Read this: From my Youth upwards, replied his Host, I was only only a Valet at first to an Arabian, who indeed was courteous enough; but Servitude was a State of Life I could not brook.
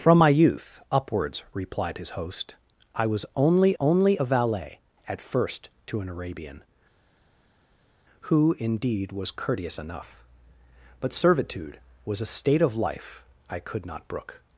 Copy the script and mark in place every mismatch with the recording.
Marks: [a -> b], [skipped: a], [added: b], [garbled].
From my Youth upwards, replied his Host, I was only only a Valet at first to an Arabian, who indeed was courteous enough; but Servitude was a State of Life I could not brook.